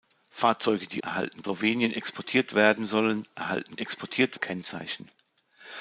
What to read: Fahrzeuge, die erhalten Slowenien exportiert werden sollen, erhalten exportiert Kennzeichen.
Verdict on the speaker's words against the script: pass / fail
pass